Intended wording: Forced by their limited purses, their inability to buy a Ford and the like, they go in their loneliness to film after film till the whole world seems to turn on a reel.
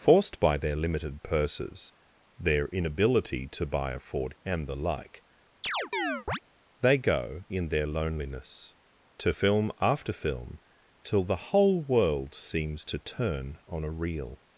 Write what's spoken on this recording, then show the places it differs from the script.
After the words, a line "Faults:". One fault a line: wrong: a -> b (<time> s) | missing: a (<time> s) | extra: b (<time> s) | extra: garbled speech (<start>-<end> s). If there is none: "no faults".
Forced by their limited purses, their inability to buy a Ford and the like, they go in their loneliness to film after film till the whole world seems to turn on a reel.
Faults:
no faults